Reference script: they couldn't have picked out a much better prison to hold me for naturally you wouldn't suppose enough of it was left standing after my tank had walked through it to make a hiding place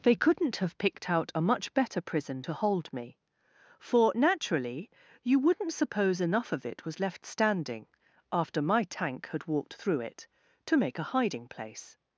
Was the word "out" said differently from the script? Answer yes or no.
no